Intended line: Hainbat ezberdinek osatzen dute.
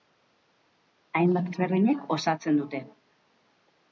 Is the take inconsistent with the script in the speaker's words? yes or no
no